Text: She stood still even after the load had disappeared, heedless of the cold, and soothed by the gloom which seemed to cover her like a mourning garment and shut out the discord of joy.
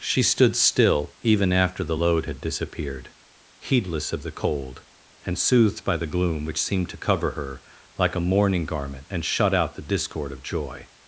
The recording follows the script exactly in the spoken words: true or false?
true